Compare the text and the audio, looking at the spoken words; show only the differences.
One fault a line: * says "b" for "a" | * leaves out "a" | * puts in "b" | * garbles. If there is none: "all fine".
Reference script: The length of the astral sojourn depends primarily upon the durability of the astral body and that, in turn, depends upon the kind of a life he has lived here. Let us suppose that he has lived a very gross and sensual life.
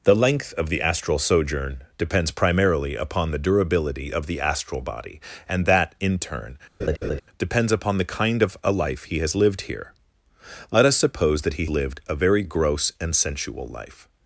* leaves out "has"